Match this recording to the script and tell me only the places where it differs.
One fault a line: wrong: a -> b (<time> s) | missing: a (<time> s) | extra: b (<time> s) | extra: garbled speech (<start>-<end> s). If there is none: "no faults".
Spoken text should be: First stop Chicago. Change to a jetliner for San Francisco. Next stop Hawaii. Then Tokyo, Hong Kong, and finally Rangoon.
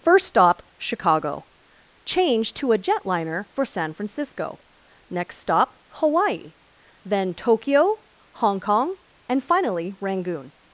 no faults